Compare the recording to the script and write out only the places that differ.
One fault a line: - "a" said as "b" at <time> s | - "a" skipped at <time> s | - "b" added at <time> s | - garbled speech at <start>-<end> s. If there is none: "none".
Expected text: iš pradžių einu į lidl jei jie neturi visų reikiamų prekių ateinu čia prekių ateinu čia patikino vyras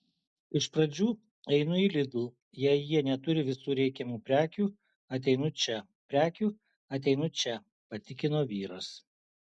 none